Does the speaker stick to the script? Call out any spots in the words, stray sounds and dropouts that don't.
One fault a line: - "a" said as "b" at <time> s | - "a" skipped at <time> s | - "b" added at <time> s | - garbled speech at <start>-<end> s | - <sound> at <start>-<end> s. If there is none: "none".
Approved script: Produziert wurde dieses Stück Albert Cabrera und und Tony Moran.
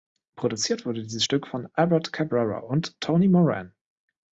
- "von" added at 1.4 s
- "und" skipped at 3.0 s